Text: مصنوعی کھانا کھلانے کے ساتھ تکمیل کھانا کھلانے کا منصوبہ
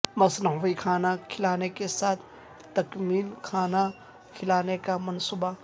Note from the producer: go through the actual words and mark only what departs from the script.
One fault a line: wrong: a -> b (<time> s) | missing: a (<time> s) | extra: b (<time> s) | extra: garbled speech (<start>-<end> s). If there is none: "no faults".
no faults